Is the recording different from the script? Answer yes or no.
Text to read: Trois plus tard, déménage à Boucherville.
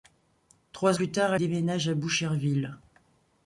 no